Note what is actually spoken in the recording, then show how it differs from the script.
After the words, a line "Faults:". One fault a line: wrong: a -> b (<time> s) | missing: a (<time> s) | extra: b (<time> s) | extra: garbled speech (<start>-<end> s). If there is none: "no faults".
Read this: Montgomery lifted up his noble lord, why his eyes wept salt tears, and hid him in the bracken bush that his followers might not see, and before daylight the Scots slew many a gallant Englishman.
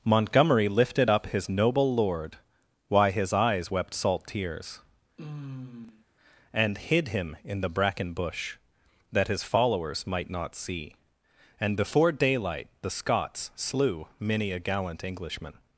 Montgomery lifted up his noble lord, why his eyes wept salt tears, and hid him in the bracken bush that his followers might not see, and before daylight the Scots slew many a gallant Englishman.
Faults:
no faults